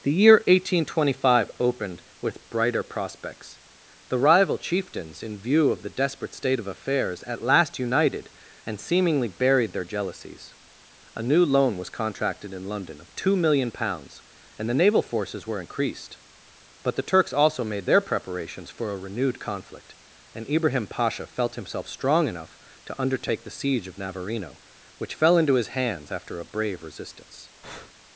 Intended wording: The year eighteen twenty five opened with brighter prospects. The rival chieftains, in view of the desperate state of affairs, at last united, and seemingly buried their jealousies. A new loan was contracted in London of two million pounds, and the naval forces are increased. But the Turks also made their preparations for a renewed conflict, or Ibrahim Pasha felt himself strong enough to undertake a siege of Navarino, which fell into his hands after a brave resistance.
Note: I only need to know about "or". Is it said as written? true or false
false